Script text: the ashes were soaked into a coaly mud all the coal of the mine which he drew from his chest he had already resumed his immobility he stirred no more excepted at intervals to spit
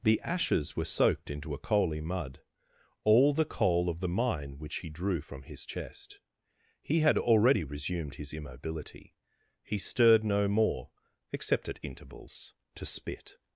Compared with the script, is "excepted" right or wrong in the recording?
wrong